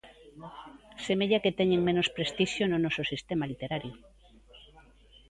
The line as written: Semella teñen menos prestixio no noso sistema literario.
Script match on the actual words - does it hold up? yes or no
no